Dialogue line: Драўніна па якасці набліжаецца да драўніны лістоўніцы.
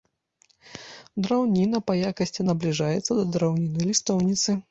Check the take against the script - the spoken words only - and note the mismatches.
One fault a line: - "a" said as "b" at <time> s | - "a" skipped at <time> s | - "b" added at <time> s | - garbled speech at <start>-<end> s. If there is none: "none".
none